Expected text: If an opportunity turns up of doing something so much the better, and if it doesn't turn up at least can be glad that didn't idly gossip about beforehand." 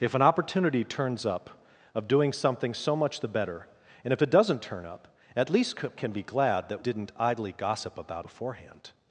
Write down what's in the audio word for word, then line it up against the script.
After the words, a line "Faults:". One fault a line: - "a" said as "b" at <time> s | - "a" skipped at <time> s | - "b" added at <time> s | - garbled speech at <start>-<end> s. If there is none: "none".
If an opportunity turns up of doing something so much the better, and if it doesn't turn up at least can be glad that didn't idly gossip about beforehand."
Faults:
none